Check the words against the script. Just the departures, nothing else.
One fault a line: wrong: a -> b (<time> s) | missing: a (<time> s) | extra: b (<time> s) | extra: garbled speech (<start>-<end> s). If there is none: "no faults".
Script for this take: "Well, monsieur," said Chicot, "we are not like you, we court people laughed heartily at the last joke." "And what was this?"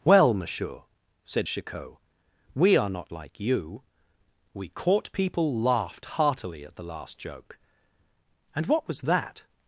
wrong: this -> that (9.0 s)